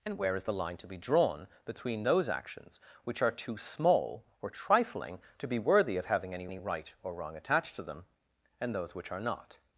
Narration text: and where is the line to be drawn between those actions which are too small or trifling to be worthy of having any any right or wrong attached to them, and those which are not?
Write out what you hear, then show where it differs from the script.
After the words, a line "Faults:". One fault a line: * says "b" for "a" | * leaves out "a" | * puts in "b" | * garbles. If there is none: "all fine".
and where is the line to be drawn between those actions which are too small or trifling to be worthy of having any any right or wrong attached to them, and those which are not?
Faults:
all fine